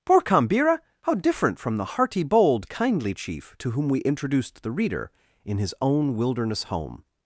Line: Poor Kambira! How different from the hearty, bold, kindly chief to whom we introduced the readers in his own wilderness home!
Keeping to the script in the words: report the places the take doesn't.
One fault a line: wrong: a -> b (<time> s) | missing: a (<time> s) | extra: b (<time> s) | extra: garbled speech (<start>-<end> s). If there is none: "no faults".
wrong: readers -> reader (4.7 s)